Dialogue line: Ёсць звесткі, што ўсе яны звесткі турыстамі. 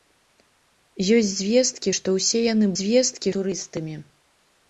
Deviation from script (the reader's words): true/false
false